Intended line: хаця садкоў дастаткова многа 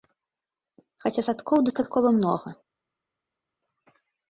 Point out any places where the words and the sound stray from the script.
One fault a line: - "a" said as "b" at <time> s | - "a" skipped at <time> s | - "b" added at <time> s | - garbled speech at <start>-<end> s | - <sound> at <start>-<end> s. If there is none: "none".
none